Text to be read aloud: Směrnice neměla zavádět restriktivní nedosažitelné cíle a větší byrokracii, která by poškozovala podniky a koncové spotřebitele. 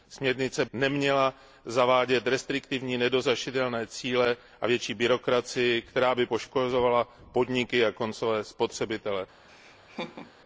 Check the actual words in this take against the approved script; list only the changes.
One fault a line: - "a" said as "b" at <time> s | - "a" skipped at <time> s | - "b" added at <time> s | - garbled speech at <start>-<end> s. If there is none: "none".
none